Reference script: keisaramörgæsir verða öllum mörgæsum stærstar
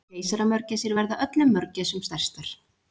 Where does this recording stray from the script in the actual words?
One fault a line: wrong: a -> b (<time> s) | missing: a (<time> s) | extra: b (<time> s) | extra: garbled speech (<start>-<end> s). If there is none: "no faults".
no faults